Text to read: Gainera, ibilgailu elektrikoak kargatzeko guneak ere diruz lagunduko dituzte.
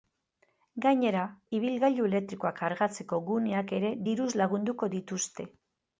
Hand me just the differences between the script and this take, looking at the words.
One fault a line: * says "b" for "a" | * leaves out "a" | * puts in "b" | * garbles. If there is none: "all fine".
all fine